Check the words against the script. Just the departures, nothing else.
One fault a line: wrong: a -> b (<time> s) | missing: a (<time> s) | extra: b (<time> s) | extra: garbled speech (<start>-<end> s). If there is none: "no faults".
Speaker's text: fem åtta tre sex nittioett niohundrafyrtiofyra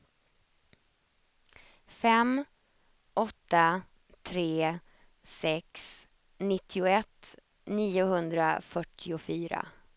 no faults